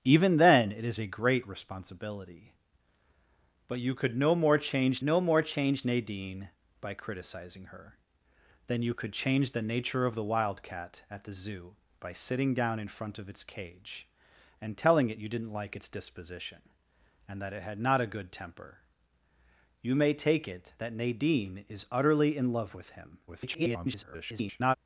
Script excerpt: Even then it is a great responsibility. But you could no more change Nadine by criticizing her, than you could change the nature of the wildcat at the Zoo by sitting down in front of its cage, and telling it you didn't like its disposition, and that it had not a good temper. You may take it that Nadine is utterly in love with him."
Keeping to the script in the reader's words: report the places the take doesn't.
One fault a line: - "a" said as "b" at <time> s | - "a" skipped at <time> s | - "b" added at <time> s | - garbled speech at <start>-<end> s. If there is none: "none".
- "no more change" added at 5.0 s
- garbled speech at 23.3-24.8 s